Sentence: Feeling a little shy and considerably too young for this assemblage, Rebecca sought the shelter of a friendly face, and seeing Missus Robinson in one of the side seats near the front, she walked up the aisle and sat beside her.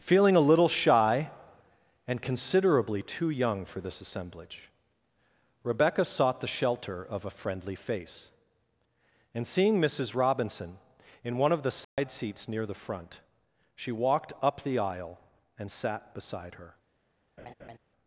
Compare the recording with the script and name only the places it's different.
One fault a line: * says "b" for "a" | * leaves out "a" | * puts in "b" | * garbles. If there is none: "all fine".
all fine